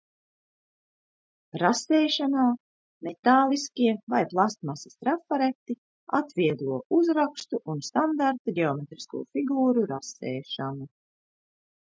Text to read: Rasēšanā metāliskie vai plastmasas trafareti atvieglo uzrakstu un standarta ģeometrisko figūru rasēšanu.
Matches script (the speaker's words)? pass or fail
pass